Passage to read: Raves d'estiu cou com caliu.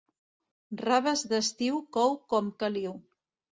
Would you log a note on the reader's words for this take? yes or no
no